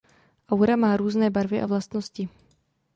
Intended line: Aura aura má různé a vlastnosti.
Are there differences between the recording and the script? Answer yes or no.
yes